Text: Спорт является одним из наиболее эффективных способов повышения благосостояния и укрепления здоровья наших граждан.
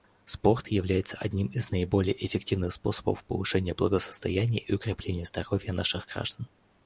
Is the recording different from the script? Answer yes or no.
no